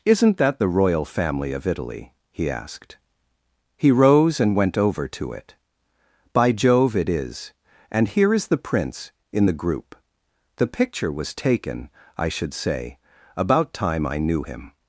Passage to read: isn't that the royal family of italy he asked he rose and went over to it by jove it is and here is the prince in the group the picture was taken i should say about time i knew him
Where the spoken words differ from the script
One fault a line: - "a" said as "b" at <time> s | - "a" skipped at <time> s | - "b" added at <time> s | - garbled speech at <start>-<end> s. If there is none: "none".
none